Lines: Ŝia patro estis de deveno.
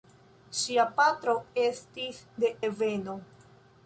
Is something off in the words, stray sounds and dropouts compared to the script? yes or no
no